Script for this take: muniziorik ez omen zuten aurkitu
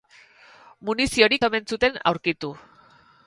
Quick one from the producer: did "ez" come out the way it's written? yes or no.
no